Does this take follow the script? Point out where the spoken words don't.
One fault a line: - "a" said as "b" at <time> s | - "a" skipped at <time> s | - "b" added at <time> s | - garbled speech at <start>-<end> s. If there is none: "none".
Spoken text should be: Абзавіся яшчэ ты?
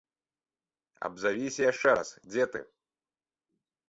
- "раз дзе" added at 2.0 s